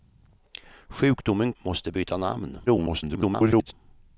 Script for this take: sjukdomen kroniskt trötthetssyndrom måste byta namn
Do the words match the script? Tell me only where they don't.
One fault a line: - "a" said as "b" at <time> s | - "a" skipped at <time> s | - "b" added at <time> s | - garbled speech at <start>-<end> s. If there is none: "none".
- "kroniskt trötthetssyndrom" skipped at 1.5 s
- garbled speech at 2.7-3.7 s